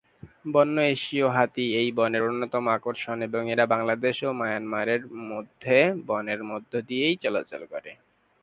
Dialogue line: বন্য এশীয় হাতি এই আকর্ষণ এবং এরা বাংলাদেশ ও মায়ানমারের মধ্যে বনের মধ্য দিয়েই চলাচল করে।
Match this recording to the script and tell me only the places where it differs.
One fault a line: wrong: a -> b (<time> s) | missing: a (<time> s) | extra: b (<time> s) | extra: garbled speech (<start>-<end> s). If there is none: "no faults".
extra: বনের অন্যতম (2.0 s)